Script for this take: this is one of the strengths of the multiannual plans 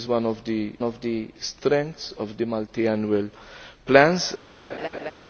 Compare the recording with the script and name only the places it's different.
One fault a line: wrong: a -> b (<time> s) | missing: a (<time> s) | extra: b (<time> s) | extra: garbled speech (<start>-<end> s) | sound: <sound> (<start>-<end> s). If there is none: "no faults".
extra: of the (0.8 s)
sound: laugh (4.7-5.1 s)